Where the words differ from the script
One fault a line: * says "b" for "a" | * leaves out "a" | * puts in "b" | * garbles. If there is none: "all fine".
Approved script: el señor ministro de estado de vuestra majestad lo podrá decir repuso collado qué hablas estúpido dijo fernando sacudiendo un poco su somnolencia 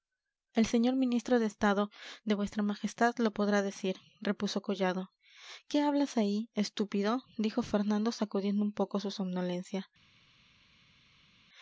* puts in "ahí"